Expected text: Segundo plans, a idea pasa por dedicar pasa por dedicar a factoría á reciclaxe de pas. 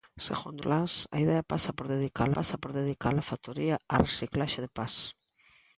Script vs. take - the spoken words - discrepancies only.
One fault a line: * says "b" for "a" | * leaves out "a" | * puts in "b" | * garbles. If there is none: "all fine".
all fine